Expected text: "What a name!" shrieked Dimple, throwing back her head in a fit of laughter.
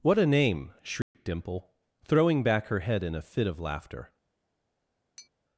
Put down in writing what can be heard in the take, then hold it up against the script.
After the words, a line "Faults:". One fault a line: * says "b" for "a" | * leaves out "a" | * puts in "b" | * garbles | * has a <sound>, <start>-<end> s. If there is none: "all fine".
"What a name!" shrieked Dimple, throwing back her head in a fit of laughter.
Faults:
* has a dropout, 1.0-1.1 s
* has a tap, 5.2-5.3 s